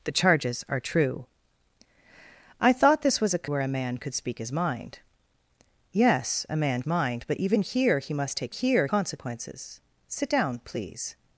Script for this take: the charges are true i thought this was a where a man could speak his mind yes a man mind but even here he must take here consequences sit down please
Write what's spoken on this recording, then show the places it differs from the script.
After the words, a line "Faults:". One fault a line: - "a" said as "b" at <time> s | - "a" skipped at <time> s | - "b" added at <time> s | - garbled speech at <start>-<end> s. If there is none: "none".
the charges are true i thought this was a where a man could speak his mind yes a man mind but even here he must take here consequences sit down please
Faults:
none